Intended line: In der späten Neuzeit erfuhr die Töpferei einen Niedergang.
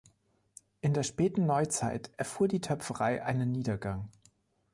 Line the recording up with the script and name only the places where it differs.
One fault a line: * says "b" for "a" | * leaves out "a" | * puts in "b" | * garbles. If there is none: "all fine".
all fine